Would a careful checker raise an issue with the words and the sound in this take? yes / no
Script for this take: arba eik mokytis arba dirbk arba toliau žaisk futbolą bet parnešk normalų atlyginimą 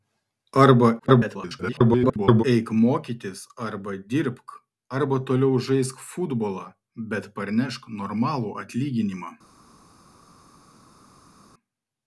yes